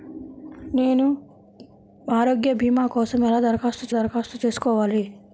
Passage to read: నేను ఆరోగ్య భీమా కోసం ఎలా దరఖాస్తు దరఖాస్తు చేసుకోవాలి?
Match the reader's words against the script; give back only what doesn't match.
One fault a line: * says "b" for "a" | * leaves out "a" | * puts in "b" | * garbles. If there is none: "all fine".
all fine